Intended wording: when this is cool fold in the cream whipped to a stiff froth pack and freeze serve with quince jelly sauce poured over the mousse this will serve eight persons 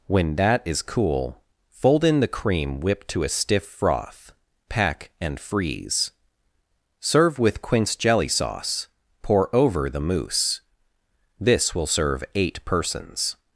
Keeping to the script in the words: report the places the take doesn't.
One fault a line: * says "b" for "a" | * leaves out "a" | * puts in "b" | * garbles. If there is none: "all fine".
* says "that" for "this"
* says "pour" for "poured"